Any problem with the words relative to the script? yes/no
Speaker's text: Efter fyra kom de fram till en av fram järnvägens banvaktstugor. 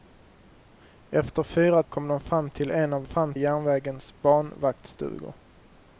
no